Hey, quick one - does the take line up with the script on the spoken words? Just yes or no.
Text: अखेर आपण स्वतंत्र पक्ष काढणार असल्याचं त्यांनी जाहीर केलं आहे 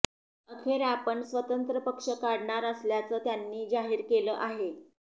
yes